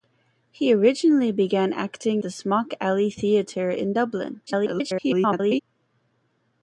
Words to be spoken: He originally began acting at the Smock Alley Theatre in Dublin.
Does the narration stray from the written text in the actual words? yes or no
yes